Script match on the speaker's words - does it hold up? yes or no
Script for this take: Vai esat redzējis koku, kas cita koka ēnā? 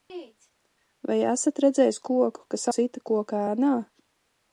yes